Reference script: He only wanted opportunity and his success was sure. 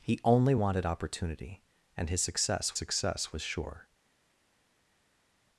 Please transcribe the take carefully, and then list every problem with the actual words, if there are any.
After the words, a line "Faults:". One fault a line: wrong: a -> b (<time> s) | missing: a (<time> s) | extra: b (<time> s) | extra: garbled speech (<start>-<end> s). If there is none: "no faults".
He only wanted opportunity and his success success was sure.
Faults:
extra: success (2.7 s)